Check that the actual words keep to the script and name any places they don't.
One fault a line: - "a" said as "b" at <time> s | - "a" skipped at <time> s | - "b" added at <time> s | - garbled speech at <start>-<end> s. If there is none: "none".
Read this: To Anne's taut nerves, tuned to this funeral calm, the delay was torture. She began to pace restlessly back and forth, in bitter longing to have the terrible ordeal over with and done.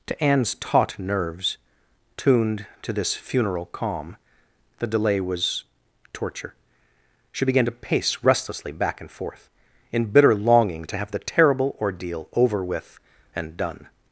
none